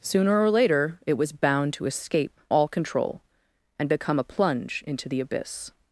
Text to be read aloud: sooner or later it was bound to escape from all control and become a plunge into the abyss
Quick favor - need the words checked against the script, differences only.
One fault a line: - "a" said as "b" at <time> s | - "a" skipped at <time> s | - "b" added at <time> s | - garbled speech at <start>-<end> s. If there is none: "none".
- "from" skipped at 2.4 s